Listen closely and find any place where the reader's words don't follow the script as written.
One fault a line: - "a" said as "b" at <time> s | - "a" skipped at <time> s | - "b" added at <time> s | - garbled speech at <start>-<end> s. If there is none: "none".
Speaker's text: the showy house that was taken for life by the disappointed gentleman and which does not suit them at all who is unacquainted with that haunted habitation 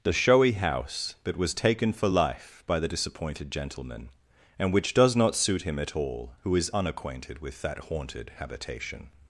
- "them" said as "him" at 5.6 s